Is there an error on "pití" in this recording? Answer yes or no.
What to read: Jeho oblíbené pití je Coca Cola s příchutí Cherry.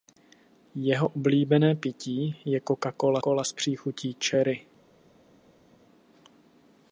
no